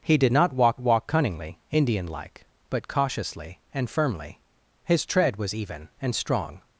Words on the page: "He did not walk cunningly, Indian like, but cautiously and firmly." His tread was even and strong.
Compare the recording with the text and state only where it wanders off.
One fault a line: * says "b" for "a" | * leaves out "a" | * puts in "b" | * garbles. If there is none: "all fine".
* puts in "walk"